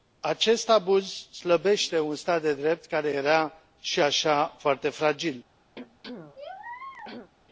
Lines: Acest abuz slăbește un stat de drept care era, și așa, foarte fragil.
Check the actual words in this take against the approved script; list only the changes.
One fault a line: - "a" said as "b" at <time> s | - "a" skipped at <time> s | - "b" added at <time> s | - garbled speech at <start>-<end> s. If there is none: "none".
none